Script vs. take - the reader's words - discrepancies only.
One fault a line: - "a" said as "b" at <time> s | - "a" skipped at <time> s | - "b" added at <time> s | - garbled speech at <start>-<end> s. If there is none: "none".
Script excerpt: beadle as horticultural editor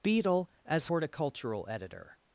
none